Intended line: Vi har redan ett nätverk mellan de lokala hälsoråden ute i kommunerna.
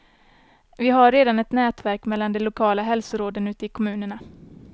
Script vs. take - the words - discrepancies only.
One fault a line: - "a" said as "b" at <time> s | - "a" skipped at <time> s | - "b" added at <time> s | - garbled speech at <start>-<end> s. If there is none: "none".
none